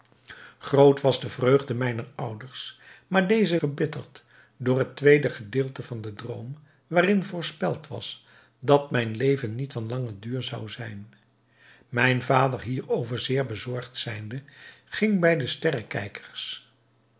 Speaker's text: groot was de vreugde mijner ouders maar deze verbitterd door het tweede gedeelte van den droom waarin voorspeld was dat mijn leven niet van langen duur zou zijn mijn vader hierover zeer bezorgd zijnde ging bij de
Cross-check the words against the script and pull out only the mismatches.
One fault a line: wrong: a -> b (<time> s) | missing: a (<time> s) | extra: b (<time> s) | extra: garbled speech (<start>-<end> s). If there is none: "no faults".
no faults